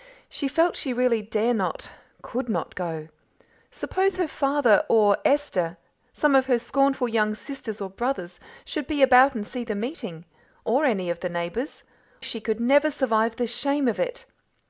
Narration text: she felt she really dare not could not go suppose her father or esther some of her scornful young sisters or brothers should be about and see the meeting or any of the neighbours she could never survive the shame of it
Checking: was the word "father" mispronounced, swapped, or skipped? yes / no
no